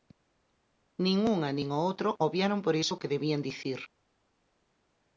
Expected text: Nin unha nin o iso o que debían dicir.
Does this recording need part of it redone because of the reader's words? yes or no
yes